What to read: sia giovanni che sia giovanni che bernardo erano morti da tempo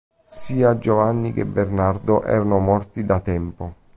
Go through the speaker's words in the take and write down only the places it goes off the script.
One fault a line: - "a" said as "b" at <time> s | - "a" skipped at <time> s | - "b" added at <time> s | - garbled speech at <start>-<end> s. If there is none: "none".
- "sia giovanni che" skipped at 1.4 s